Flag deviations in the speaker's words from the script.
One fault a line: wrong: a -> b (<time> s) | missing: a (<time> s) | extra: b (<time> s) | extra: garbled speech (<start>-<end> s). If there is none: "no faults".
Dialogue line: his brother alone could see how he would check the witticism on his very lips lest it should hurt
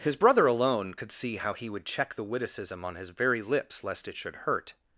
no faults